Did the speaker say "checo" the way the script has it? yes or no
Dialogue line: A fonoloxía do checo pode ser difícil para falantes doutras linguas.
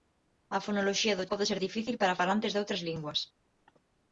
no